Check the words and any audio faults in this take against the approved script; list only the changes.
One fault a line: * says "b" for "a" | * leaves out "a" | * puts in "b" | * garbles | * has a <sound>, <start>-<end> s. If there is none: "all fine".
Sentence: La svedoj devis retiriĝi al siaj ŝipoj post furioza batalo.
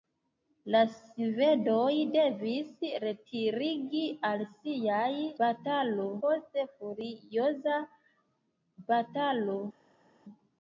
* says "batalo" for "ŝipoj"